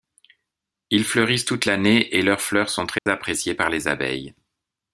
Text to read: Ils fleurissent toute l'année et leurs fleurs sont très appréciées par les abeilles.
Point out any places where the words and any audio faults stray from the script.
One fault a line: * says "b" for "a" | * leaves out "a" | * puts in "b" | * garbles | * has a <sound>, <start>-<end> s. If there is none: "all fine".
* has a dropout, 3.0-3.1 s